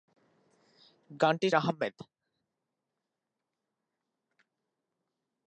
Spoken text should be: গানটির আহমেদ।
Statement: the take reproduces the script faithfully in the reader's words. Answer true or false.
true